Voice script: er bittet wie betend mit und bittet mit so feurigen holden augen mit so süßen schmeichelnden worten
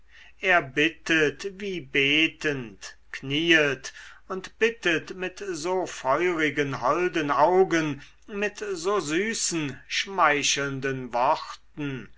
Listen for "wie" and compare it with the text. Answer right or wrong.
right